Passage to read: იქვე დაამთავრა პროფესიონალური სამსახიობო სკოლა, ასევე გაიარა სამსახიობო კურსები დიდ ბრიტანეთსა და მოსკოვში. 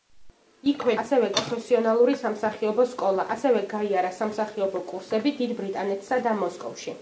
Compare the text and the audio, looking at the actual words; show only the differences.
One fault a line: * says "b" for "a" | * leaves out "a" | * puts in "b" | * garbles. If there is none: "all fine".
* says "ასევე" for "დაამთავრა"